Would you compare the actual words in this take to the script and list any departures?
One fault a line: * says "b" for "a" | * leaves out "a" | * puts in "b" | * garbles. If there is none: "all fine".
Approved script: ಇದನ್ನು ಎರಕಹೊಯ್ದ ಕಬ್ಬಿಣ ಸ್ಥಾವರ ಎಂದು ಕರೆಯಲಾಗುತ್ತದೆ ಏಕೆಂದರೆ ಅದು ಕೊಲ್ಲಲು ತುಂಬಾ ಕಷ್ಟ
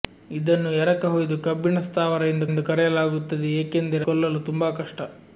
* puts in "ಎಂದು"
* leaves out "ಅದು"